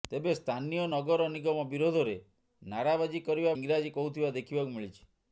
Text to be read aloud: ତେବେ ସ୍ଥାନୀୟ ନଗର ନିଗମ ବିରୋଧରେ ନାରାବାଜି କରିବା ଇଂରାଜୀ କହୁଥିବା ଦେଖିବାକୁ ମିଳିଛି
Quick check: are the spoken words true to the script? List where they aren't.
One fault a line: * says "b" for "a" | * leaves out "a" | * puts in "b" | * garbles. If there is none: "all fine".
all fine